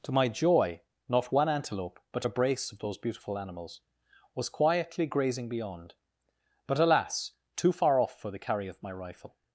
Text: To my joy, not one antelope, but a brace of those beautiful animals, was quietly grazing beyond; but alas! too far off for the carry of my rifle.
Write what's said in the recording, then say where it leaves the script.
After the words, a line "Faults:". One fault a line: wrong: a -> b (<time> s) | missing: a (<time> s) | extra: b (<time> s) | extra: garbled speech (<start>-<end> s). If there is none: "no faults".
To my joy, not one antelope, but a brace of those beautiful animals, was quietly grazing beyond; but alas! too far off for the carry of my rifle.
Faults:
no faults